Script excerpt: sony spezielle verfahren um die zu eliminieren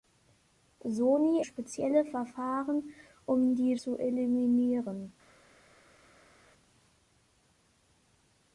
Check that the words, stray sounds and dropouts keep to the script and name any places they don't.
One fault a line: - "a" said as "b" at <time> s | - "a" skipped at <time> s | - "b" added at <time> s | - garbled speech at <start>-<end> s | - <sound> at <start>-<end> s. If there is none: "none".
none